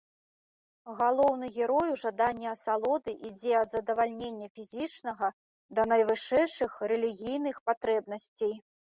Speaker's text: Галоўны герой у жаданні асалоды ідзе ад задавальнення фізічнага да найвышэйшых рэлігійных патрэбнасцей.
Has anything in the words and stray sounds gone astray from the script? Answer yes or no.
no